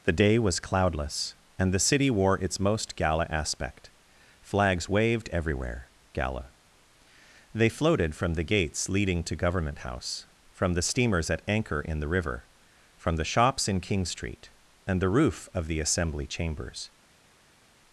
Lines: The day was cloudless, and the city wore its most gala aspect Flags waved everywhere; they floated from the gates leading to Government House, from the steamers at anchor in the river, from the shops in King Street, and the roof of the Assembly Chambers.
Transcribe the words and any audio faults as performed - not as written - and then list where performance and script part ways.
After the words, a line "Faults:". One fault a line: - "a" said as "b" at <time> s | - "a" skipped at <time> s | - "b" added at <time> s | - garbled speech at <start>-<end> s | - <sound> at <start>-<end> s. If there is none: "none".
The day was cloudless, and the city wore its most gala aspect Flags waved everywhere; gala they floated from the gates leading to Government House, from the steamers at anchor in the river, from the shops in King Street, and the roof of the Assembly Chambers.
Faults:
- "gala" added at 6.1 s